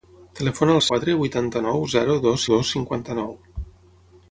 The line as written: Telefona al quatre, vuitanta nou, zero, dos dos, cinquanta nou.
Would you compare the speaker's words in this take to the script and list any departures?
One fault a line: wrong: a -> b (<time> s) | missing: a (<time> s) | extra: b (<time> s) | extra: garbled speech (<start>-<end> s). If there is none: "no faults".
no faults